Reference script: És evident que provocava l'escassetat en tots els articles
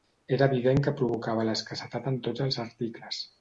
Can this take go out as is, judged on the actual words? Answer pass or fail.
fail